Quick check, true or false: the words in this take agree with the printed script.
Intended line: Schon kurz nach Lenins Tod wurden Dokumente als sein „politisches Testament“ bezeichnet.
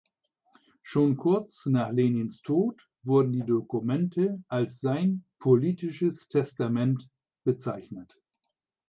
false